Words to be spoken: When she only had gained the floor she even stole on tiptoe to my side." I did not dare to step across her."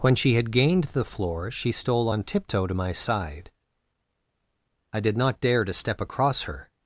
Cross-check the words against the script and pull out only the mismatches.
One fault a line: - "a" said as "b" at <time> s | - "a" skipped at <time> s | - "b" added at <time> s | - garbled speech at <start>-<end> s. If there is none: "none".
- "only" skipped at 0.3 s
- "even" skipped at 1.7 s